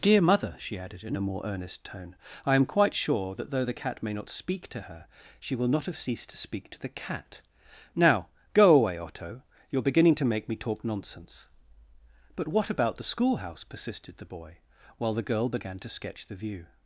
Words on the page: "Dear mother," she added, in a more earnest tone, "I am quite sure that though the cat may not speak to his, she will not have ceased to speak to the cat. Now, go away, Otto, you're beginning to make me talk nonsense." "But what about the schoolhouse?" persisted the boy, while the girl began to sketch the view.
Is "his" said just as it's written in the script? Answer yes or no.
no